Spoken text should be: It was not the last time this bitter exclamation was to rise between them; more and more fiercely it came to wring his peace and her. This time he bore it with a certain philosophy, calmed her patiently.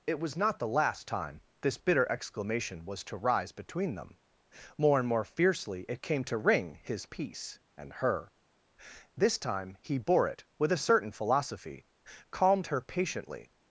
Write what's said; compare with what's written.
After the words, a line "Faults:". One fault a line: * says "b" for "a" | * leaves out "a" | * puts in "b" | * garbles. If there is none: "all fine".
It was not the last time this bitter exclamation was to rise between them; more and more fiercely it came to wring his peace and her. This time he bore it with a certain philosophy, calmed her patiently.
Faults:
all fine